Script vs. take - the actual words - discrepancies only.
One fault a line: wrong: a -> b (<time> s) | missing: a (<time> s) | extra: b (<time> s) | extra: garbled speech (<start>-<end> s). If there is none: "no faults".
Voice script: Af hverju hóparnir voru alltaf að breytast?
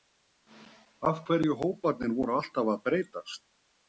no faults